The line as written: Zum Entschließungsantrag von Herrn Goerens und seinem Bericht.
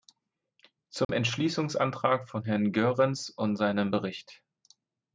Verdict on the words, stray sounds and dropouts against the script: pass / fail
fail